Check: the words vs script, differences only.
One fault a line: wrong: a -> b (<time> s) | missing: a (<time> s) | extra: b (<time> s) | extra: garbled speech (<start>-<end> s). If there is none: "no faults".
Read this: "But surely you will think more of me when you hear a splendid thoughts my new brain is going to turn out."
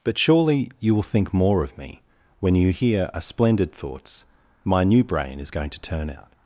no faults